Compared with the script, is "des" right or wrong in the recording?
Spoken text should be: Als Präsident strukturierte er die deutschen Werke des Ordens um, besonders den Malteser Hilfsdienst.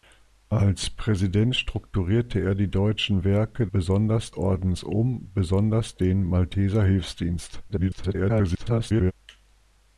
wrong